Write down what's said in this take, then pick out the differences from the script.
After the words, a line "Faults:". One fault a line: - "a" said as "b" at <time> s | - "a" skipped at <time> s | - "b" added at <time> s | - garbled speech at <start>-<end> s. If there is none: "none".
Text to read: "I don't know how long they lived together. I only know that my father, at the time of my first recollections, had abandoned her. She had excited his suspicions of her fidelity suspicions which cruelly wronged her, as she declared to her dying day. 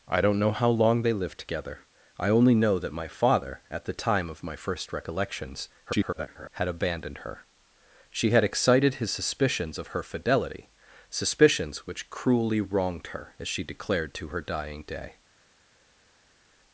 "I don't know how long they lived together. I only know that my father, at the time of my first recollections, [garbled] had abandoned her. She had excited his suspicions of her fidelity suspicions which cruelly wronged her, as she declared to her dying day.
Faults:
- garbled speech at 5.9-6.5 s